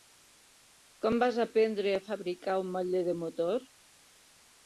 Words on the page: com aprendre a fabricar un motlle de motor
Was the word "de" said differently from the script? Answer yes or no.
no